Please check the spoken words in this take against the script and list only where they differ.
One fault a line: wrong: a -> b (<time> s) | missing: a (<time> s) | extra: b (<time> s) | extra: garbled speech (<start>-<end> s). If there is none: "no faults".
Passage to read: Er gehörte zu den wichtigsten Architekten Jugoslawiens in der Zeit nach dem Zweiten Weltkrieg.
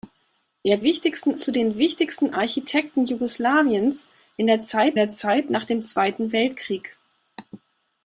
wrong: gehörte -> wichtigsten (0.8 s)
extra: der Zeit (4.9 s)